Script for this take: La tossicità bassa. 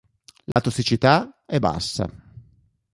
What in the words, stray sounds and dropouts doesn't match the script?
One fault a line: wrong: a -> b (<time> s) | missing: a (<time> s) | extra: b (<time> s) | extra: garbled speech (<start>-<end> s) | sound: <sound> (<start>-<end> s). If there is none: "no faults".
sound: dropout (0.5-0.6 s)
extra: è (1.4 s)